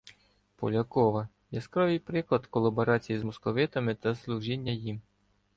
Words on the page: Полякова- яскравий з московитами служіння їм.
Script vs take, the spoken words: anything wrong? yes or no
yes